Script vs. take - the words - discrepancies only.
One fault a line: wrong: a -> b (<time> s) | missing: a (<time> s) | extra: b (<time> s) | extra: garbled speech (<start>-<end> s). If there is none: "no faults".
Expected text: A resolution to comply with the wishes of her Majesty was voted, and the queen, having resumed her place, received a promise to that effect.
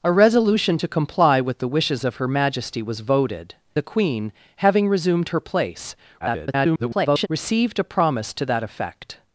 missing: and (3.5 s)
extra: garbled speech (6.2-7.3 s)